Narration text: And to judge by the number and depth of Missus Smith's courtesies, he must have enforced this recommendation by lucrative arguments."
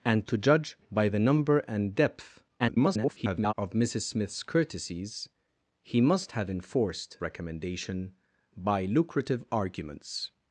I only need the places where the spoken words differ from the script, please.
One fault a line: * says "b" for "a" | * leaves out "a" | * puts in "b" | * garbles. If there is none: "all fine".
* garbles
* leaves out "this"